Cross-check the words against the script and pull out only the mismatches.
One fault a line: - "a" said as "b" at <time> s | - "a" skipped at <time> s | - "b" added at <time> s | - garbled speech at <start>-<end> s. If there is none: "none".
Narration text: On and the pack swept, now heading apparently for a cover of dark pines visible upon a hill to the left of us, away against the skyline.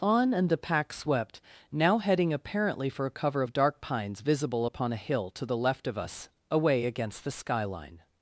none